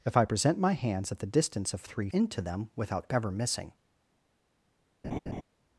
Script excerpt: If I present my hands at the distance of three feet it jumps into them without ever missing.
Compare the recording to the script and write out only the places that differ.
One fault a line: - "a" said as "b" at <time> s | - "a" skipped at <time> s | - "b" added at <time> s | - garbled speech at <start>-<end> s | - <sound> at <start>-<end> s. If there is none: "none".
- "feet it jumps" skipped at 2.1 s
- laugh at 5.0-5.4 s